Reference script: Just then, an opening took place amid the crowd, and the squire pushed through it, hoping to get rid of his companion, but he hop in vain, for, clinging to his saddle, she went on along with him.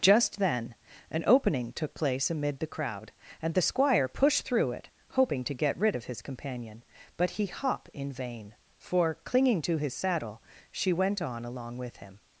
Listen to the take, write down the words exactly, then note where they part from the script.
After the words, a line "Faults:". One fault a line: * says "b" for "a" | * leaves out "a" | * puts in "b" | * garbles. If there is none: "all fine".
Just then, an opening took place amid the crowd, and the squire pushed through it, hoping to get rid of his companion, but he hop in vain, for, clinging to his saddle, she went on along with him.
Faults:
all fine